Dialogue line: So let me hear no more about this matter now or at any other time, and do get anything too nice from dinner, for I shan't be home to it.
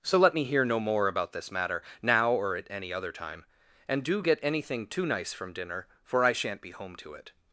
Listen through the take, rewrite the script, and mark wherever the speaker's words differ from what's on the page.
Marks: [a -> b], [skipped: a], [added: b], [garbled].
So let me hear no more about this matter now or at any other time, and do get anything too nice from dinner, for I shan't be home to it.